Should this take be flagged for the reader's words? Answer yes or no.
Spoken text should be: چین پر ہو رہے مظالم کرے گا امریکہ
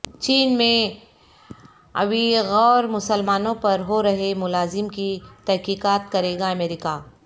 yes